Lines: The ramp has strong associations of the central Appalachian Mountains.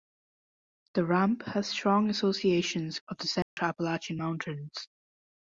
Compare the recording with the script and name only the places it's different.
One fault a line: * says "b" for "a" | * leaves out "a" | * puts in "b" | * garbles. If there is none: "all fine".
all fine